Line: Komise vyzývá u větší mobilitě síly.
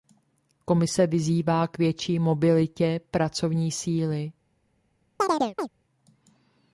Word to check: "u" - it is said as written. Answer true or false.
false